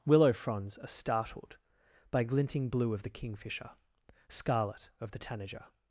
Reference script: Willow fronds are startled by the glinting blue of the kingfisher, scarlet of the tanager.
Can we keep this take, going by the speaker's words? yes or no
no